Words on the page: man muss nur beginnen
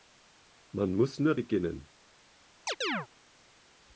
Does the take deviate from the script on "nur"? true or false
false